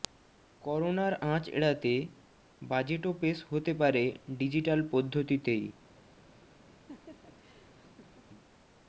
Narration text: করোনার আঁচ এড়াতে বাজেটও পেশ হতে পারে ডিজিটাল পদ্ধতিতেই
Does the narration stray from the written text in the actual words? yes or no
no